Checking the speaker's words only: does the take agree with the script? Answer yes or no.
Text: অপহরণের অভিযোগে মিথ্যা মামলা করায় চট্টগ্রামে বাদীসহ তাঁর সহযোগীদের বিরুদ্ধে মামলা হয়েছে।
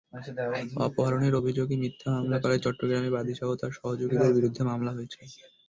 yes